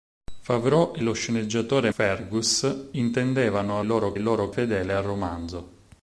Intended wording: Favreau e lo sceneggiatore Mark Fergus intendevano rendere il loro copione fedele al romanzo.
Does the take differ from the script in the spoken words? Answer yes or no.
yes